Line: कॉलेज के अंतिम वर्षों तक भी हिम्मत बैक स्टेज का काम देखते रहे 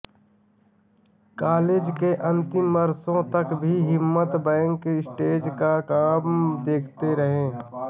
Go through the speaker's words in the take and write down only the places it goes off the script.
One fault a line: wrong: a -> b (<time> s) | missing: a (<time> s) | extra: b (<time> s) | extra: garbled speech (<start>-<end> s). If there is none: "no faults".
no faults